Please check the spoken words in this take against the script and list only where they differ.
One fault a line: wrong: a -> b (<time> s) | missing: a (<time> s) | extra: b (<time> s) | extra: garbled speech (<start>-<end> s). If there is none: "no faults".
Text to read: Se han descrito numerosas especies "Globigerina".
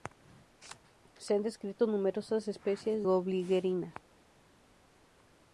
no faults